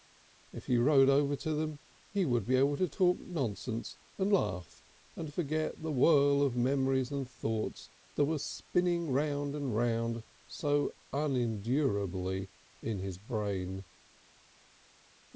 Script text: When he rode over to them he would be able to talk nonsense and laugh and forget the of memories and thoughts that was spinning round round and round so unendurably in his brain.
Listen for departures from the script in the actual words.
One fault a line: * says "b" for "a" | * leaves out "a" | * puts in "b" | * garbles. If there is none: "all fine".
* says "If" for "When"
* puts in "whirl"
* leaves out "round"